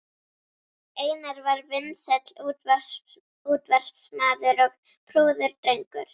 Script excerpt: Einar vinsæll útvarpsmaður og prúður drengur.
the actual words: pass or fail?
fail